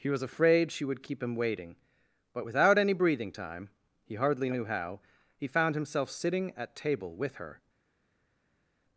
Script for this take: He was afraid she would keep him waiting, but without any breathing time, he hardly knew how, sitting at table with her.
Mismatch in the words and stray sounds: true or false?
true